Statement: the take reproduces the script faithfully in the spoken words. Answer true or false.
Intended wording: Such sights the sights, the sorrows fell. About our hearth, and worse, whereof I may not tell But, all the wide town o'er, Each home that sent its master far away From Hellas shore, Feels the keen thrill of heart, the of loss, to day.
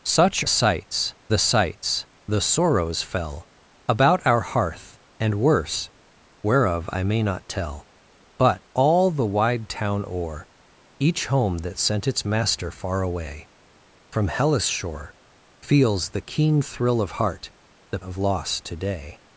true